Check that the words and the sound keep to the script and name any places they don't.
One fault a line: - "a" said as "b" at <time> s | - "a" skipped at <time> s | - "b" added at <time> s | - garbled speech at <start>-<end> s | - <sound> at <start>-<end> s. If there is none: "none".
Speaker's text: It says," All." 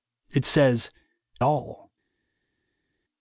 none